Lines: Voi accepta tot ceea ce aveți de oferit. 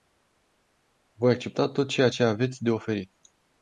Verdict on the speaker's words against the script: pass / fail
pass